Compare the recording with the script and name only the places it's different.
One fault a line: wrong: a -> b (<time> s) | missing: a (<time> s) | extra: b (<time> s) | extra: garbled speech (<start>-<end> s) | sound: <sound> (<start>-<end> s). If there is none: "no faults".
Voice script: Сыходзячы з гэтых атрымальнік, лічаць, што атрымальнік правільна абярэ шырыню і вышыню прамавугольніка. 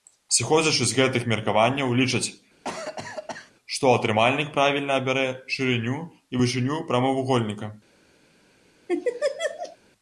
wrong: атрымальнік -> меркаванняў (1.3 s)
sound: cough (2.6-3.5 s)
sound: laugh (8.9-9.8 s)